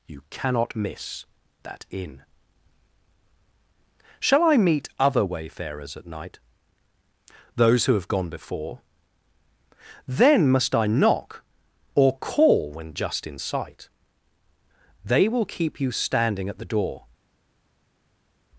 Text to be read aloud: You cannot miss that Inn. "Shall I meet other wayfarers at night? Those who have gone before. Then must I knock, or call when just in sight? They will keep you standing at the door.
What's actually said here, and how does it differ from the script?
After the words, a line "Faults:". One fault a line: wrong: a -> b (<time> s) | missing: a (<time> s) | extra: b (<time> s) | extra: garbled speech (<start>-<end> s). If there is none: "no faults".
You cannot miss that Inn. "Shall I meet other wayfarers at night? Those who have gone before. Then must I knock, or call when just in sight? They will keep you standing at the door.
Faults:
no faults